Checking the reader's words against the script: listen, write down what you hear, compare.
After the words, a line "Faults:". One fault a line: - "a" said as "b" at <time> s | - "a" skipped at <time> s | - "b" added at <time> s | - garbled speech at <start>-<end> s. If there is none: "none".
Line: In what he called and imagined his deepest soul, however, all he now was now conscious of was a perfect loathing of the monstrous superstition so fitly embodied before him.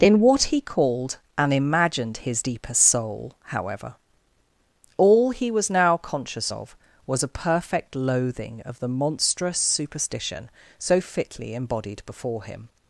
In what he called and imagined his deepest soul, however, all he was now conscious of was a perfect loathing of the monstrous superstition so fitly embodied before him.
Faults:
- "now" skipped at 5.5 s